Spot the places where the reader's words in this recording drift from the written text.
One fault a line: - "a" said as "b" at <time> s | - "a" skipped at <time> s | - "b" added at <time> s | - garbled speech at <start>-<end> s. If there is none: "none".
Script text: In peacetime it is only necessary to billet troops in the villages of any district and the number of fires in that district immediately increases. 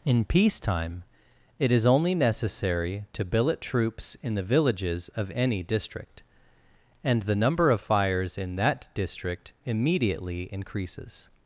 none